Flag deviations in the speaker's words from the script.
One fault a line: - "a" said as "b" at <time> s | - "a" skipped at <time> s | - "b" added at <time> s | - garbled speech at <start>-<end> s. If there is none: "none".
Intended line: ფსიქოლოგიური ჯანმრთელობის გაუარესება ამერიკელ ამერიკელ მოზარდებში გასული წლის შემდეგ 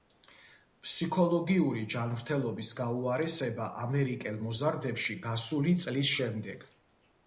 - "ამერიკელ" skipped at 4.4 s